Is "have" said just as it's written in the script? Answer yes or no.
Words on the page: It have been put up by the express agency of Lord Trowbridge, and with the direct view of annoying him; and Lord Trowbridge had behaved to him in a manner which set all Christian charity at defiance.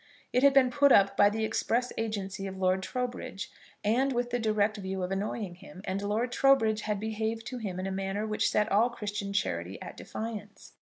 no